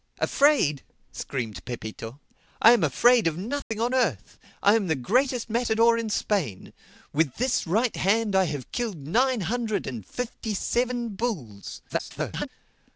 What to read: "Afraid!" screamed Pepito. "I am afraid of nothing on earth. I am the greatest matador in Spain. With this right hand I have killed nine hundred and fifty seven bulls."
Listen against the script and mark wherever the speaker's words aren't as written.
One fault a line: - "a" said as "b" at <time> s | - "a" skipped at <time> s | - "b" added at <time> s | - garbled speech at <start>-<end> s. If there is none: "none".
- garbled speech at 11.9-12.5 s